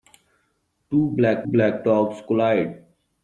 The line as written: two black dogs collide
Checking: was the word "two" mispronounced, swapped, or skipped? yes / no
no